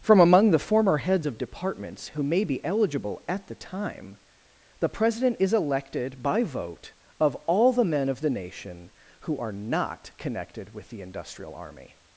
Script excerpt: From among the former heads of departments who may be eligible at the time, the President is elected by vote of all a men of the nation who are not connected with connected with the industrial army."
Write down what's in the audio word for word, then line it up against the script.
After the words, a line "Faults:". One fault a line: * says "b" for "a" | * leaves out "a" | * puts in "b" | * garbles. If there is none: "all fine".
From among the former heads of departments who may be eligible at the time, the President is elected by vote of all the men of the nation who are not connected with the industrial army."
Faults:
* says "the" for "a"
* leaves out "connected with"